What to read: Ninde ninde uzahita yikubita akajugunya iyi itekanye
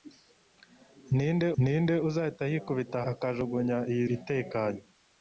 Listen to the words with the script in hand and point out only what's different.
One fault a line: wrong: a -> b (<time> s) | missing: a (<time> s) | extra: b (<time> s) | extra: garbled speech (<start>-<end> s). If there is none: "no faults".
no faults